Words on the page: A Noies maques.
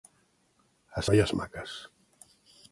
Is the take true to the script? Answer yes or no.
yes